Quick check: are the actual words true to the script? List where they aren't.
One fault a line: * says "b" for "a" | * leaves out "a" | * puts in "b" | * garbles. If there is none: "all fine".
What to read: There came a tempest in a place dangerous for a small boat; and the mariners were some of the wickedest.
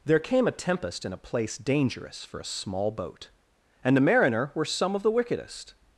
* says "mariner" for "mariners"